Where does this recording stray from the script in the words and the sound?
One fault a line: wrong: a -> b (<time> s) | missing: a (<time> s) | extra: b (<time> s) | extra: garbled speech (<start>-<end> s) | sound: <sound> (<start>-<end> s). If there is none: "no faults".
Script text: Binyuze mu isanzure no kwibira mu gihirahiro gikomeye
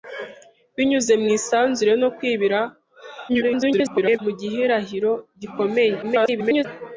extra: garbled speech (3.3-4.2 s)
extra: garbled speech (6.0-6.6 s)